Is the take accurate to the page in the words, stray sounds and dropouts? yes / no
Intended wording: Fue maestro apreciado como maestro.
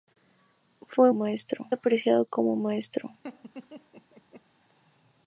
no